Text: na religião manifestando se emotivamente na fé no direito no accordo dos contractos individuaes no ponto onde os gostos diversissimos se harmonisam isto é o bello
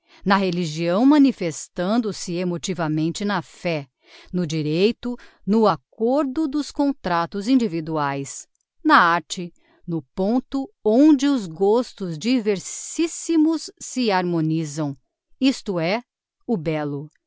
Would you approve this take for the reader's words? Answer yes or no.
no